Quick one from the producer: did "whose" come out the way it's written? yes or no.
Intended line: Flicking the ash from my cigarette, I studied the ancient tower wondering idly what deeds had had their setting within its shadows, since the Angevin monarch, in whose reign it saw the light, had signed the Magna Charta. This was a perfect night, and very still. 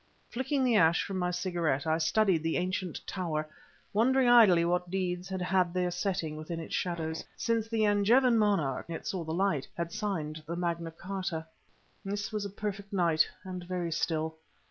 no